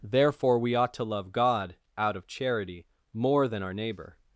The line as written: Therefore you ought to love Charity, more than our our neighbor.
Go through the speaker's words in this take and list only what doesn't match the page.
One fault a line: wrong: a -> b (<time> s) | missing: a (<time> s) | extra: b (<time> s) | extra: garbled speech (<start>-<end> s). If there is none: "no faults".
wrong: you -> we (0.6 s)
extra: God out of (1.3 s)
missing: our (3.7 s)